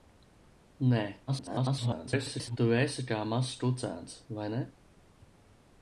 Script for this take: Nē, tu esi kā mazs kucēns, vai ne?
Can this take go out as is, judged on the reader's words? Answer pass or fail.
fail